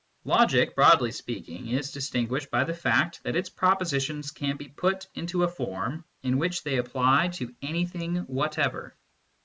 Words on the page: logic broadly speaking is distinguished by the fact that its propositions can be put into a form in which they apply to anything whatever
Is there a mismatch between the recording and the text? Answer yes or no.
no